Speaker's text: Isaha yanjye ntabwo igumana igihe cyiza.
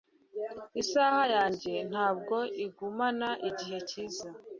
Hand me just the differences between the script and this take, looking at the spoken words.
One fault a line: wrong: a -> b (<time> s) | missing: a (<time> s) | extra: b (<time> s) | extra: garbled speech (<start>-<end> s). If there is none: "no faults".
no faults